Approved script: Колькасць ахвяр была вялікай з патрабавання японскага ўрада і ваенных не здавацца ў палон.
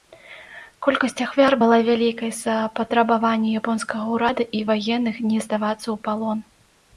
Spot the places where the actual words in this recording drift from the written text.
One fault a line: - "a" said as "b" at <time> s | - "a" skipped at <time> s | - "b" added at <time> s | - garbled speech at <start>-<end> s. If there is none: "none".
- "за" added at 2.4 s